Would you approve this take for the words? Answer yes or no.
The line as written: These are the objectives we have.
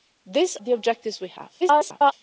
no